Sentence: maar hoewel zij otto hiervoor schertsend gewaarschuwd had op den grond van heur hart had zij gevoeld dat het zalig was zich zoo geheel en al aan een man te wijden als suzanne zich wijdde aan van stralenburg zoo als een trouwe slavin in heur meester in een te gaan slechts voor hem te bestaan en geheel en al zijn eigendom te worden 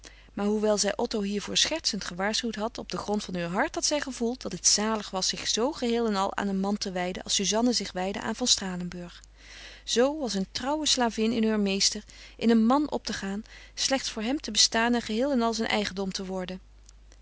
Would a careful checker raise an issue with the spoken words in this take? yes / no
yes